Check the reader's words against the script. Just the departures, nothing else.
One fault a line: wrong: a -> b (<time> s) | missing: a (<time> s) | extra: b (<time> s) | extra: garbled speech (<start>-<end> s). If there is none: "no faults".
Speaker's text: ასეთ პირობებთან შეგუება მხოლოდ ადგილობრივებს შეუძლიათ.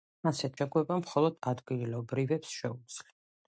missing: პირობებთან (0.6 s)